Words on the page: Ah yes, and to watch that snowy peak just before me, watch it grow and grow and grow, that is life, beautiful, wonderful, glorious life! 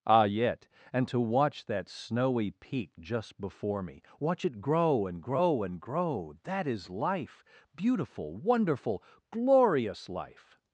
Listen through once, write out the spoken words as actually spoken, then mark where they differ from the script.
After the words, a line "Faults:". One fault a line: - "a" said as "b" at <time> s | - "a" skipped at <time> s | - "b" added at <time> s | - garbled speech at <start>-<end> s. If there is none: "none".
Ah yet, and to watch that snowy peak just before me, watch it grow and grow and grow, that is life, beautiful, wonderful, glorious life!
Faults:
- "yes" said as "yet" at 0.2 s